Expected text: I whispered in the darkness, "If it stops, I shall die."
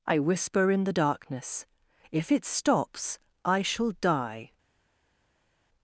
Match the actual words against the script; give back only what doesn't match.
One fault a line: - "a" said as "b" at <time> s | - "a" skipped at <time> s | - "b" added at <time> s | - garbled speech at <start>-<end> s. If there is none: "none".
- "whispered" said as "whisper" at 0.2 s